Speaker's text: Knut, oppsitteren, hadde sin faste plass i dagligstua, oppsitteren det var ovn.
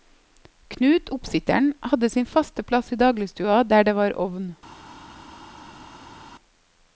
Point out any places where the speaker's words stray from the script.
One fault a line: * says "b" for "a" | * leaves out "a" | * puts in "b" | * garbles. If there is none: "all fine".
* says "der" for "oppsitteren"